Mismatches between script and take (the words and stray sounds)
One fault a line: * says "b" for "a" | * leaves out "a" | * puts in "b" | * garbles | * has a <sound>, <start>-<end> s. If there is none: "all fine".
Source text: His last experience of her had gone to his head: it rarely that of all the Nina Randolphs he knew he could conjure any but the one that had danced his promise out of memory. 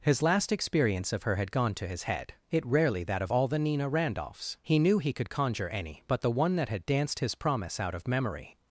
all fine